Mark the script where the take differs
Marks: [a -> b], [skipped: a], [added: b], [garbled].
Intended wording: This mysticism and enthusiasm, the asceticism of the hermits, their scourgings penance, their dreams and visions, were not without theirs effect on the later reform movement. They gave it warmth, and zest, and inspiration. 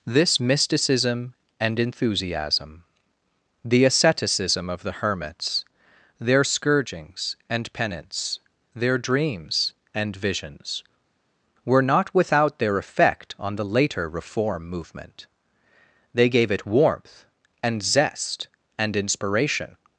This mysticism and enthusiasm, the asceticism of the hermits, their scourgings [added: and] penance, their dreams and visions, were not without [theirs -> their] effect on the later reform movement. They gave it warmth, and zest, and inspiration.